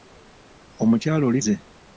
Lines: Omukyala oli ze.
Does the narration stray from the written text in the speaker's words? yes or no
no